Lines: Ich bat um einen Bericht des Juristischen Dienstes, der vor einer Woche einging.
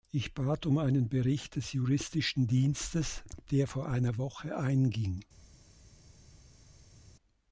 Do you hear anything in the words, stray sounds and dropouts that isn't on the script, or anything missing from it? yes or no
no